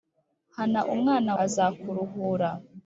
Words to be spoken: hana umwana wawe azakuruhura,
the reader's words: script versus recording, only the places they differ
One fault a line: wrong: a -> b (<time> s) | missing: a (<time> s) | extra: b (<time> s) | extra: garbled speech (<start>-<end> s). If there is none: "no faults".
missing: wawe (1.3 s)